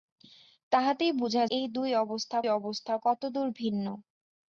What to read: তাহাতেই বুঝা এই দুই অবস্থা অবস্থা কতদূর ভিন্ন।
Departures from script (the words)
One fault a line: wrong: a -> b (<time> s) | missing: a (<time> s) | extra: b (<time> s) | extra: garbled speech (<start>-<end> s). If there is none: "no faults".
no faults